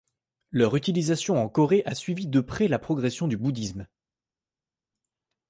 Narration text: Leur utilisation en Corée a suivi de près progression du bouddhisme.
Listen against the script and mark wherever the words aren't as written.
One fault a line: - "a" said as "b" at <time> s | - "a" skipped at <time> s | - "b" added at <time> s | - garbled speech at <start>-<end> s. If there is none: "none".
- "la" added at 2.7 s